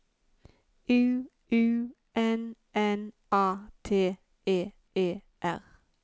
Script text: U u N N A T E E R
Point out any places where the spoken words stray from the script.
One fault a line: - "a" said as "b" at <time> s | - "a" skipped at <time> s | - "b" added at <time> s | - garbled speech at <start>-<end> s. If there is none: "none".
none